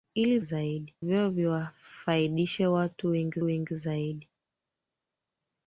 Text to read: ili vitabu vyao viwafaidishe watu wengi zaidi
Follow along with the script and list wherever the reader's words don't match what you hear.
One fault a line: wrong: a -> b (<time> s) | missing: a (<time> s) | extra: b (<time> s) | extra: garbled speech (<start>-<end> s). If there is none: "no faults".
wrong: vitabu -> zaidi (0.4 s)
extra: wengi (3.4 s)